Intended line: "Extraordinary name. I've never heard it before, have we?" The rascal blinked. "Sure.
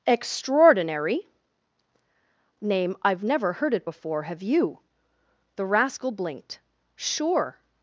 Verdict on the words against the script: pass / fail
fail